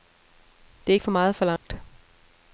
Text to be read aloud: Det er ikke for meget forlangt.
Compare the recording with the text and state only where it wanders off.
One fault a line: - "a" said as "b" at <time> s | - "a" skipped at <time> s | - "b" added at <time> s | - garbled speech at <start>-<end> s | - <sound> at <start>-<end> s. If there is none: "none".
- dropout at 1.6-1.6 s